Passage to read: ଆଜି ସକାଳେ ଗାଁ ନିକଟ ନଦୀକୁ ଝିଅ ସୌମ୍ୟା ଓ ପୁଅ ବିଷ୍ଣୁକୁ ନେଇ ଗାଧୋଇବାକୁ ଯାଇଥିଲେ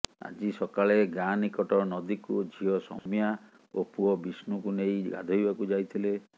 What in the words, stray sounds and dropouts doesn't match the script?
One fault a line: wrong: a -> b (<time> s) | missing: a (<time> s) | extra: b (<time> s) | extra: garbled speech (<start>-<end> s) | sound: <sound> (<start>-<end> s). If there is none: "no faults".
sound: dropout (3.0-3.1 s)